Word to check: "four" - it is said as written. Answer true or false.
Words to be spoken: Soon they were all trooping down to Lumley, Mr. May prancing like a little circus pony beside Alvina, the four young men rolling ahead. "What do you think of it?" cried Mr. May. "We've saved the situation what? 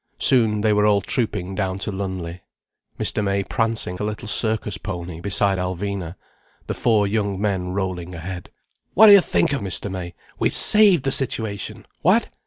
true